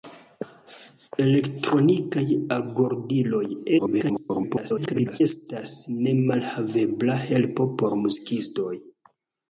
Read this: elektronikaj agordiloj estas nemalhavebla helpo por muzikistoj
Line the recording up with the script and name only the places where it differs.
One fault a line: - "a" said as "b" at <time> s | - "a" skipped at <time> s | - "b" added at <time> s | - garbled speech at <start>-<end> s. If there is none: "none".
- garbled speech at 3.8-5.2 s